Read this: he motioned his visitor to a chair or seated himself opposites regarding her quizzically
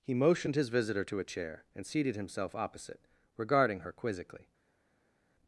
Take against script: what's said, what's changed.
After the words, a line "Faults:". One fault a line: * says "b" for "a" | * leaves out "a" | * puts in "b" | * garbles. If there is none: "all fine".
he motioned his visitor to a chair and seated himself opposite regarding her quizzically
Faults:
* says "and" for "or"
* says "opposite" for "opposites"